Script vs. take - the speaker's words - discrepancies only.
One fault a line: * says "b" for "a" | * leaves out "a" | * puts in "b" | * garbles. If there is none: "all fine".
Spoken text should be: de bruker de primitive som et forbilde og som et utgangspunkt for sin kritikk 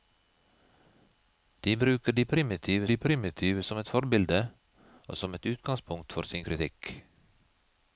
* puts in "de primitive"